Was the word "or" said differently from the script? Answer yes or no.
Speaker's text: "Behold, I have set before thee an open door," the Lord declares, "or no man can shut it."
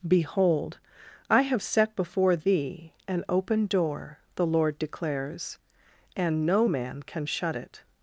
yes